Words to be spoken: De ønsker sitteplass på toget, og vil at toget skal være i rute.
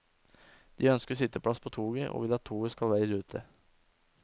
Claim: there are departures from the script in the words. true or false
false